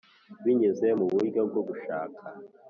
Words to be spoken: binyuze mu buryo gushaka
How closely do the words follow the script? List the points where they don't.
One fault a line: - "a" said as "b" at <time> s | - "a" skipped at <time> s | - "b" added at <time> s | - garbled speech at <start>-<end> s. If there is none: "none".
- "bwo" added at 1.5 s